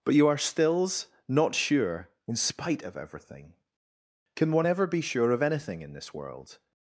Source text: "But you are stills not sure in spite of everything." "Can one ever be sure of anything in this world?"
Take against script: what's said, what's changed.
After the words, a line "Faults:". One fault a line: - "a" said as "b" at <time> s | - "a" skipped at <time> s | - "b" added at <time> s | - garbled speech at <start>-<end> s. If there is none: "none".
"But you are stills not sure in spite of everything." "Can one ever be sure of anything in this world?"
Faults:
none